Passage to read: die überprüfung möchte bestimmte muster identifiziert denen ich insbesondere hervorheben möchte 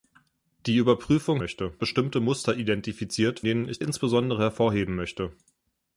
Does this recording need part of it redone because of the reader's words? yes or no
no